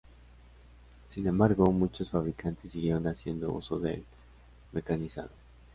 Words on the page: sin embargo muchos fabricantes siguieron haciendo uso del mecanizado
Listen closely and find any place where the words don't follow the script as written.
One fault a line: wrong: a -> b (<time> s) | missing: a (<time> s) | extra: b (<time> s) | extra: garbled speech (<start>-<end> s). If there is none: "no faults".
no faults